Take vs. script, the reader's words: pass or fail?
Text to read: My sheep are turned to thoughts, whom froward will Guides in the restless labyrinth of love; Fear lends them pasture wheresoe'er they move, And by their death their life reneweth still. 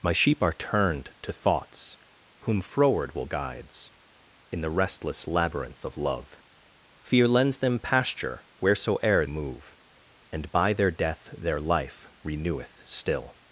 fail